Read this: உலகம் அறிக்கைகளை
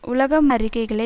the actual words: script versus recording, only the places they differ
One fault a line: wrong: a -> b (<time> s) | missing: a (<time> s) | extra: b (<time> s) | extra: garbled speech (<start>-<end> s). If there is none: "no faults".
no faults